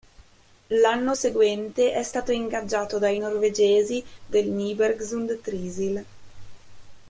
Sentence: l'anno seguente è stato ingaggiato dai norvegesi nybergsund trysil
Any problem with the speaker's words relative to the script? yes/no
yes